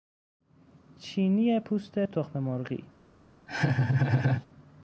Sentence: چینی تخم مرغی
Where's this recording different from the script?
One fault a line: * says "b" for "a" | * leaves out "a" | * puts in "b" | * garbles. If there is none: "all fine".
* puts in "پوست"